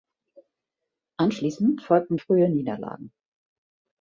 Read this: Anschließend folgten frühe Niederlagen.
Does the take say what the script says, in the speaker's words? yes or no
yes